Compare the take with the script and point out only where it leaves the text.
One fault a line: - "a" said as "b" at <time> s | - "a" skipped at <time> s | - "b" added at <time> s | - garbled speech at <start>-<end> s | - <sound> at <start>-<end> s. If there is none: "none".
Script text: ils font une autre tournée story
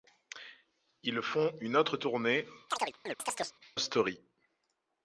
- chirp at 2.7-3.6 s